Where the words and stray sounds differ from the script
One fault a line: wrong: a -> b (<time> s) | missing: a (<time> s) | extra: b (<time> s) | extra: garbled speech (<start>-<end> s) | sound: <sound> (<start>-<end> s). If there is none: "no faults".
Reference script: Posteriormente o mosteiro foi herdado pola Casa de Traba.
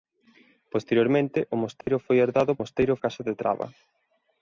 sound: dropout (1.8-1.9 s)
wrong: pola -> mosteiro (2.6 s)